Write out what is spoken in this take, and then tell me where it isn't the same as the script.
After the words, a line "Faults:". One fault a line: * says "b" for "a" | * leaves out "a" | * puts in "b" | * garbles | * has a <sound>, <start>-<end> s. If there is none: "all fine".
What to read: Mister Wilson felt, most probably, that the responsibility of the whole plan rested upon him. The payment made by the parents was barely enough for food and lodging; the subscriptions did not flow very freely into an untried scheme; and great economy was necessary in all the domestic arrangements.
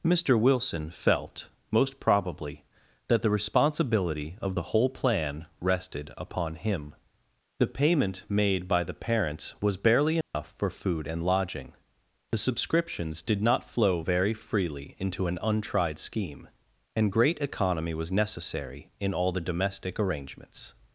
Mister Wilson felt, most probably, that the responsibility of the whole plan rested upon him. The payment made by the parents was barely enough for food and lodging; the subscriptions did not flow very freely into an untried scheme; and great economy was necessary in all the domestic arrangements.
Faults:
* has a dropout, 10.2-10.3 s